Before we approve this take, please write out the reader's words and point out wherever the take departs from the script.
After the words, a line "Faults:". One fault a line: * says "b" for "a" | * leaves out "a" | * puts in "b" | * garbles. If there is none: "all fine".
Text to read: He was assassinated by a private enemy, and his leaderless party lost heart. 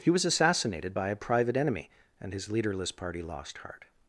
He was assassinated by a private enemy, and his leaderless party lost heart.
Faults:
all fine